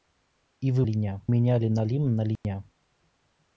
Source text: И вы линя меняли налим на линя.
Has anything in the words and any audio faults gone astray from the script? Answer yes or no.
yes